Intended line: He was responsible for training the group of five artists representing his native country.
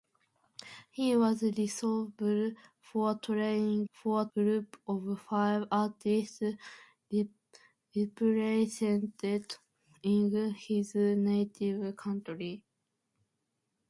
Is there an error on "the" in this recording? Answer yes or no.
yes